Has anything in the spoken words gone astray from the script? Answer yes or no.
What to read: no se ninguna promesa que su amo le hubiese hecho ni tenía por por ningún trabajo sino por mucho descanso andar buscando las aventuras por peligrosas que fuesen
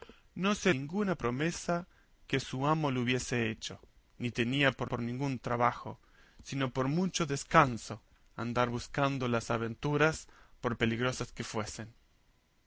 no